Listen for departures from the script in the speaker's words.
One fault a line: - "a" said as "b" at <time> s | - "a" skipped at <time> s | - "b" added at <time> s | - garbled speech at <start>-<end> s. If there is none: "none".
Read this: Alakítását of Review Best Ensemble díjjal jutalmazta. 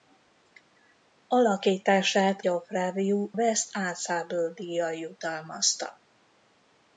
none